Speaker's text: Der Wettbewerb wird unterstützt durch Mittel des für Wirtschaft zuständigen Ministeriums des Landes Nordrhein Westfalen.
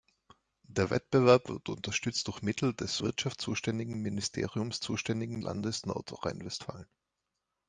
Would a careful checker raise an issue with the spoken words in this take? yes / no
yes